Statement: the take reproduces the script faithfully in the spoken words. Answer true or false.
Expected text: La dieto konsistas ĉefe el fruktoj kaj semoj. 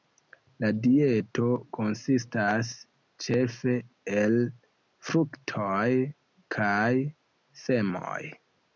true